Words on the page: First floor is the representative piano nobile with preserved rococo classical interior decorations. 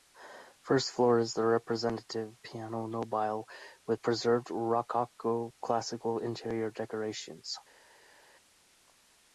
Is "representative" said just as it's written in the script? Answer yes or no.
yes